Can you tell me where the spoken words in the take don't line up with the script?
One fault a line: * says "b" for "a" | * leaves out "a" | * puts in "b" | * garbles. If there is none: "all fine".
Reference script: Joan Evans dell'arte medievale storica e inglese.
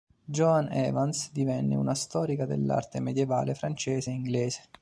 * puts in "divenne una storica"
* says "francese" for "storica"